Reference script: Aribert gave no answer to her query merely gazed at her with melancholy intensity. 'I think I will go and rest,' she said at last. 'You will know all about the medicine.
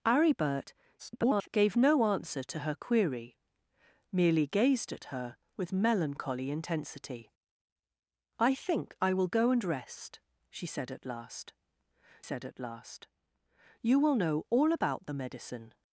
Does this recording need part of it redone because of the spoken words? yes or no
yes